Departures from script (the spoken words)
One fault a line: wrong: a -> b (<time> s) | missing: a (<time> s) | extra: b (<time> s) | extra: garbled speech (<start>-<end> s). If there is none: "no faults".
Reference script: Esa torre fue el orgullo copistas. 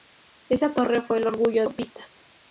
no faults